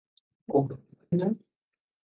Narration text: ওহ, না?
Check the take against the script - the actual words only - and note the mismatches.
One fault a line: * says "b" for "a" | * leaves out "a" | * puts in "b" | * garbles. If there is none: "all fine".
all fine